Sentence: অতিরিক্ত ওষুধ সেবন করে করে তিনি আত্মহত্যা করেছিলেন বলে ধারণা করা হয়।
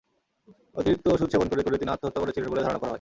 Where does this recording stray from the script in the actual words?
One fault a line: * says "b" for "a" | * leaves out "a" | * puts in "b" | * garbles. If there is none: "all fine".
all fine